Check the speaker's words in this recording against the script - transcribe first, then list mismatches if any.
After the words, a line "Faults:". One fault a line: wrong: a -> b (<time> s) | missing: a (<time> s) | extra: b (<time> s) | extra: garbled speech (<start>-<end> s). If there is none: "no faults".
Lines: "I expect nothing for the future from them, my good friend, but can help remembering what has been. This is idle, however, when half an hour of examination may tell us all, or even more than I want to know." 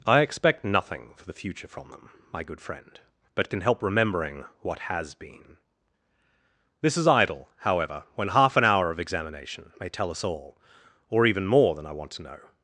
"I expect nothing for the future from them, my good friend, but can help remembering what has been. This is idle, however, when half an hour of examination may tell us all, or even more than I want to know."
Faults:
no faults